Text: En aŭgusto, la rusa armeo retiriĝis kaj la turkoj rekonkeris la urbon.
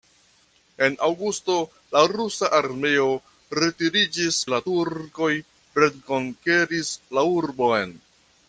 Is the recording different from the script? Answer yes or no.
yes